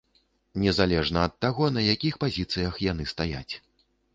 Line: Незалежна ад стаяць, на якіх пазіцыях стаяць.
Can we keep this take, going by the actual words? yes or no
no